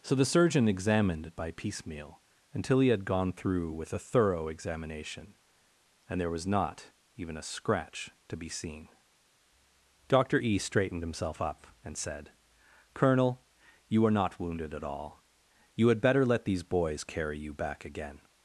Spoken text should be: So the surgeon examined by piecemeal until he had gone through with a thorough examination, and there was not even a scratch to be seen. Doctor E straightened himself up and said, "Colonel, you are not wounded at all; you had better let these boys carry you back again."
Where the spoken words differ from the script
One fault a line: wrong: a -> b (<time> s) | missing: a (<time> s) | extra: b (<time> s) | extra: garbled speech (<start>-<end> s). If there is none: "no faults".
no faults